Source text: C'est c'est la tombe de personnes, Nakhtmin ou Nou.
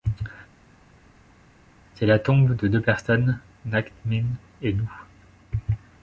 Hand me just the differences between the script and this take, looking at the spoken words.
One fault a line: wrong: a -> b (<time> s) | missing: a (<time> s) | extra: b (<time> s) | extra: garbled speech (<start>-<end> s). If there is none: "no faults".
missing: c'est (2.1 s)
extra: deux (2.7 s)
wrong: ou -> et (4.6 s)